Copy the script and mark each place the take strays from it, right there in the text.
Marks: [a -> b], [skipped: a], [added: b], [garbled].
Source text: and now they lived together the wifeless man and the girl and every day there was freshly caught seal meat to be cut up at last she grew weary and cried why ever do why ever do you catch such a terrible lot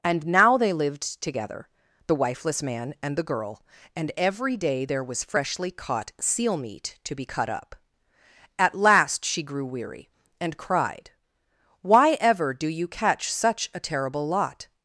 and now they lived together the wifeless man and the girl and every day there was freshly caught seal meat to be cut up at last she grew weary and cried why ever do [skipped: why ever do] you catch such a terrible lot